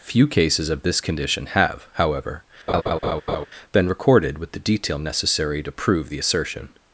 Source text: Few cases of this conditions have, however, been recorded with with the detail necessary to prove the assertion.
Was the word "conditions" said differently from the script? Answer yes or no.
yes